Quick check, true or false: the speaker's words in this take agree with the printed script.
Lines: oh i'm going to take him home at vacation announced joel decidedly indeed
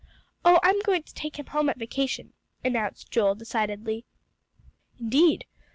true